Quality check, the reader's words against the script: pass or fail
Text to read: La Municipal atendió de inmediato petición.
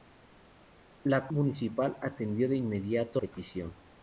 pass